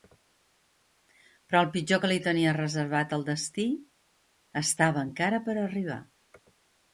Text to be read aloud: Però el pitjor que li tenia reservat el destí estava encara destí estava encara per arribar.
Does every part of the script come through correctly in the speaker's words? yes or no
no